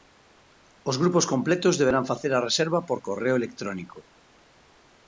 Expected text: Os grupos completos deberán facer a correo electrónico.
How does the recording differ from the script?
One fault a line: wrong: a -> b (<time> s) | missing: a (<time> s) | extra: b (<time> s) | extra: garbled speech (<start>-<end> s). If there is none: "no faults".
extra: reserva por (2.5 s)